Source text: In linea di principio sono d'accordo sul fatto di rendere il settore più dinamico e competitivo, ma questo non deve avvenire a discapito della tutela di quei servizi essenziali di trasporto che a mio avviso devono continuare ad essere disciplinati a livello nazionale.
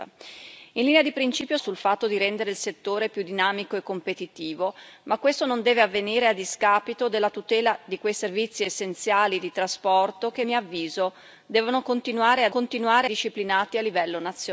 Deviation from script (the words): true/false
true